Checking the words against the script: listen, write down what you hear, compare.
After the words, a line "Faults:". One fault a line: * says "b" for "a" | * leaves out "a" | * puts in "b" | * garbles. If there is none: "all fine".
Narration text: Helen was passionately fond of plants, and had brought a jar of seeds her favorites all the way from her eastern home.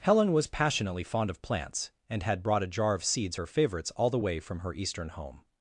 Helen was passionately fond of plants, and had brought a jar of seeds her favorites all the way from her eastern home.
Faults:
all fine